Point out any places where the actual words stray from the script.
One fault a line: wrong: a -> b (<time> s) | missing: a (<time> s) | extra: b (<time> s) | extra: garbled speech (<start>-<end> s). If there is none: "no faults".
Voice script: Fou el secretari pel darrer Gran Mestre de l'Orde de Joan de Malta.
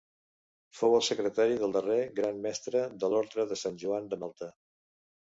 wrong: pel -> del (1.6 s)
extra: Sant (3.6 s)